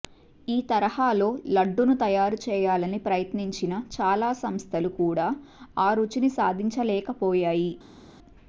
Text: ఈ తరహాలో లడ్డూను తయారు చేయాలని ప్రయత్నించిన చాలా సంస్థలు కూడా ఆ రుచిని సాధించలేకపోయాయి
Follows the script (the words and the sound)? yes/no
yes